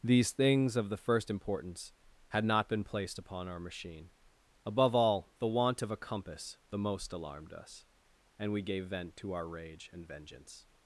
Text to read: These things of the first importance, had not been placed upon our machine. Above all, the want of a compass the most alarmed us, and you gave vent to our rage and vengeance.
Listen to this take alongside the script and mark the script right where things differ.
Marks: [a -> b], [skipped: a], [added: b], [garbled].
These things of the first importance, had not been placed upon our machine. Above all, the want of a compass the most alarmed us, and [you -> we] gave vent to our rage and vengeance.